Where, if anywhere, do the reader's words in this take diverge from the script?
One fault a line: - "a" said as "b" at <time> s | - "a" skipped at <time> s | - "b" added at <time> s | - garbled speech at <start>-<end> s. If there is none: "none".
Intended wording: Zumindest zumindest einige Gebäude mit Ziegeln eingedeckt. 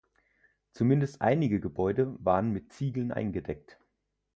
- "zumindest" skipped at 1.2 s
- "waren" added at 2.2 s